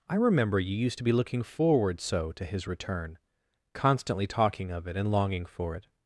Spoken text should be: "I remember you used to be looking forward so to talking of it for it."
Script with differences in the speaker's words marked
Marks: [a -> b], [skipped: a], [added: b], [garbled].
"I remember you used to be looking forward so to [added: his return constantly] talking of it [added: and longing] for it."